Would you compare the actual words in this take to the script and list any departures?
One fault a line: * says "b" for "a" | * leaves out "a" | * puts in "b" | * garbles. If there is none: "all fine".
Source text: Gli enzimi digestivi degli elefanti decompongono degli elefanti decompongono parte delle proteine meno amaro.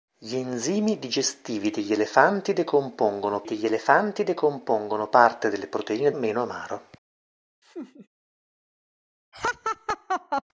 all fine